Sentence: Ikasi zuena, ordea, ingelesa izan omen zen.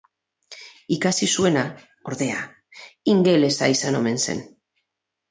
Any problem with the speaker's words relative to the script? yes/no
no